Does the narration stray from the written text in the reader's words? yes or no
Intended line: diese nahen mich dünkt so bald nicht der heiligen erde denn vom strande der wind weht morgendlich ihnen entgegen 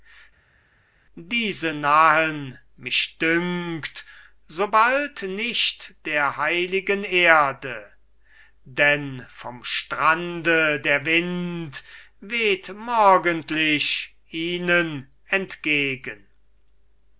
no